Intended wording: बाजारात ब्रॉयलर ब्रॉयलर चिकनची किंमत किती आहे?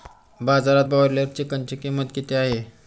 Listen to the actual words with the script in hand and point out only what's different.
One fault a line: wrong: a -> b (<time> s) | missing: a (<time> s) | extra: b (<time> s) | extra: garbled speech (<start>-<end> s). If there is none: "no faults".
missing: ब्रॉयलर (1.2 s)